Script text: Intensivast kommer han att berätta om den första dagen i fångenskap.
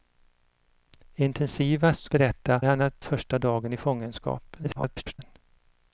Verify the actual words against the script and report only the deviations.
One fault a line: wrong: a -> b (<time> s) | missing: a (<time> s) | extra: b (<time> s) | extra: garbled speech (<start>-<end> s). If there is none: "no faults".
wrong: kommer -> berätta (2.1 s)
missing: berätta om den (3.0 s)
extra: garbled speech (4.6-5.2 s)